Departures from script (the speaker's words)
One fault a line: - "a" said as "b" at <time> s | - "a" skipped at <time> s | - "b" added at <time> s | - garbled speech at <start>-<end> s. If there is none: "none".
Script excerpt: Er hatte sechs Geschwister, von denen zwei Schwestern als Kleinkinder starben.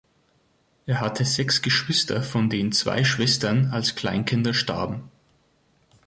none